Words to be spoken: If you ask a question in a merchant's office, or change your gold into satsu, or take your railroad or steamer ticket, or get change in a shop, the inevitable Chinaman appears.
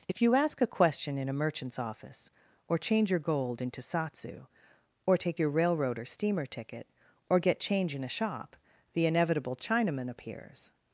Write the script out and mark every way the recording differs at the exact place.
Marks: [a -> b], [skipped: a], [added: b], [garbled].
If you ask a question in a merchant's office, or change your gold into satsu, or take your railroad or steamer ticket, or get change in a shop, the inevitable Chinaman appears.